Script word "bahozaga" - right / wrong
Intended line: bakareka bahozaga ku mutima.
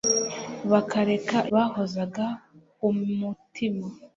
right